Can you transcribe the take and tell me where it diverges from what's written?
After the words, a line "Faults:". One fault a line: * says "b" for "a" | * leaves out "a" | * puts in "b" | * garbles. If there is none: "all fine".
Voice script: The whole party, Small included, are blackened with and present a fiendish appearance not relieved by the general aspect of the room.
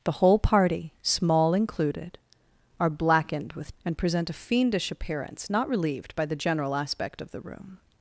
The whole party, Small included, are blackened with and present a fiendish appearance not relieved by the general aspect of the room.
Faults:
all fine